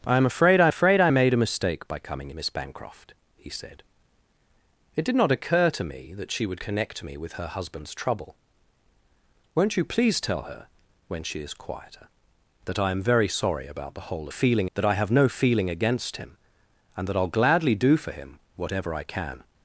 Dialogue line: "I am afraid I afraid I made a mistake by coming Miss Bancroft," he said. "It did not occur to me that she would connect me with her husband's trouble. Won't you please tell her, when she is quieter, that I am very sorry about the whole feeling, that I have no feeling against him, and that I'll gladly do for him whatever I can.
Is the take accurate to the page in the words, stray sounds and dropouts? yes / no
yes